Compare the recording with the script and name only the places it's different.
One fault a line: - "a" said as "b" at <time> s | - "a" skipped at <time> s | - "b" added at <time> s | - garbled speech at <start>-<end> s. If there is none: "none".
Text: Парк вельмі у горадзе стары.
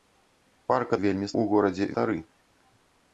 none